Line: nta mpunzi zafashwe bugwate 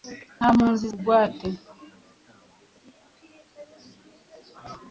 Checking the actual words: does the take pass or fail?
fail